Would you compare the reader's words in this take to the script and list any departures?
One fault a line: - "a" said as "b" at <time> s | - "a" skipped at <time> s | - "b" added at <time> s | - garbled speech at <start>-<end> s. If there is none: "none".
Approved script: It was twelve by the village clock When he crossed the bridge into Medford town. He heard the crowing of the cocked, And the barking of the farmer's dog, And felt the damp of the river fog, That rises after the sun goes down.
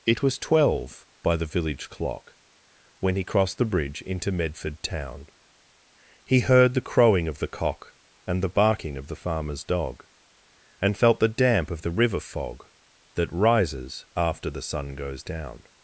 - "cocked" said as "cock" at 7.5 s